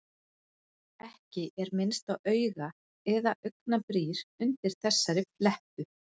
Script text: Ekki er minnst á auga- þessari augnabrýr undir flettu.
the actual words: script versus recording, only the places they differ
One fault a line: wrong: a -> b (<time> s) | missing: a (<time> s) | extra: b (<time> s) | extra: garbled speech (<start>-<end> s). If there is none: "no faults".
wrong: þessari -> eða (3.2 s)
extra: þessari (4.9 s)